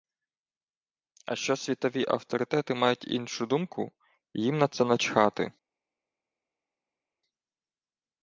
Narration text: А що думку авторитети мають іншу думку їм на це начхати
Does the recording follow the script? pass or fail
fail